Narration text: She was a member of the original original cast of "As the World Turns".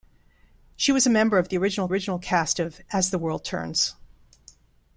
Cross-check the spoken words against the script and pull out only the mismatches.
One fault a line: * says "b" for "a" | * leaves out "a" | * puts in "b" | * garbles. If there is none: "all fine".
all fine